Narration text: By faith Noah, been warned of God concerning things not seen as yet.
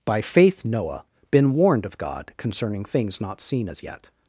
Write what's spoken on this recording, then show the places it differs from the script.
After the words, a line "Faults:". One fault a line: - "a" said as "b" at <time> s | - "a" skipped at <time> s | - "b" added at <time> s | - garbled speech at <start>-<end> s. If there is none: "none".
By faith Noah, been warned of God concerning things not seen as yet.
Faults:
none